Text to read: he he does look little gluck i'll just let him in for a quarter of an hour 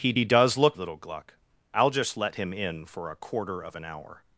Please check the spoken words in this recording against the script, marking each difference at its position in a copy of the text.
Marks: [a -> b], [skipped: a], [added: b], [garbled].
he he does look little gluck i'll just let him in for a quarter of an hour